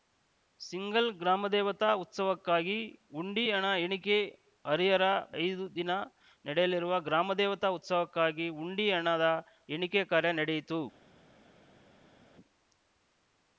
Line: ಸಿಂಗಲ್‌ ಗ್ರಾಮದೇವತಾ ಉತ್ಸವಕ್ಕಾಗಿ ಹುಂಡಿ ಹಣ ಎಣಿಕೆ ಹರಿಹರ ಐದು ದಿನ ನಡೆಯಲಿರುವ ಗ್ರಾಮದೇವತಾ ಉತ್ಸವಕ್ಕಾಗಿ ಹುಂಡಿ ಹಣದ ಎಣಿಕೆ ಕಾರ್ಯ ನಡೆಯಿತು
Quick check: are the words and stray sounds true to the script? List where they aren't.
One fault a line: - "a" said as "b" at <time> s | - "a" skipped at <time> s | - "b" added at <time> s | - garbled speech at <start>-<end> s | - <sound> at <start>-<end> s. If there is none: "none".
none